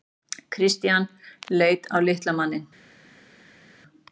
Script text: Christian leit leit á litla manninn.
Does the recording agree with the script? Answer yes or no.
no